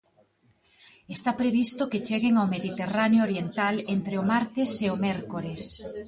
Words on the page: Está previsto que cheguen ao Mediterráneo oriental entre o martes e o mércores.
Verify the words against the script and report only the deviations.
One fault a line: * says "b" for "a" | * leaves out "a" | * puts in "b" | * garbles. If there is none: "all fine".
all fine